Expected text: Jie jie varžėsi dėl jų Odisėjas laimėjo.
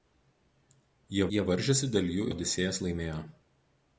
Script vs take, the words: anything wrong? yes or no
no